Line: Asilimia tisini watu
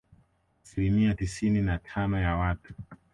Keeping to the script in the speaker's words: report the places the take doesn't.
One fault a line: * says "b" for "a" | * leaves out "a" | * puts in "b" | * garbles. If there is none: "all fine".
* puts in "na tano ya"